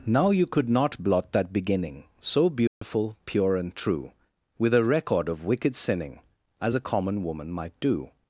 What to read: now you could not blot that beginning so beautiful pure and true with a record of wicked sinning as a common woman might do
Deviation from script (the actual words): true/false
false